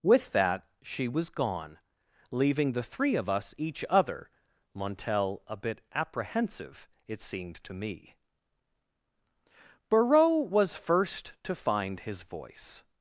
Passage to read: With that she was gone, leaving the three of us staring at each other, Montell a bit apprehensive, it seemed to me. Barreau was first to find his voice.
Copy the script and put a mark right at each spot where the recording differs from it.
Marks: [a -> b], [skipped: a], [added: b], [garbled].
With that she was gone, leaving the three of us [skipped: staring at] each other, Montell a bit apprehensive, it seemed to me. Barreau was first to find his voice.